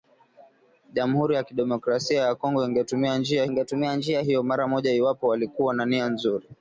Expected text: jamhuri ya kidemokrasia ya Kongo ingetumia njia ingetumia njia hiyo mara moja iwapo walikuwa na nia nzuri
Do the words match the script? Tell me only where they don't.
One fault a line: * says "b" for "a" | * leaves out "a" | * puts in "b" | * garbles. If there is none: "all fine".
all fine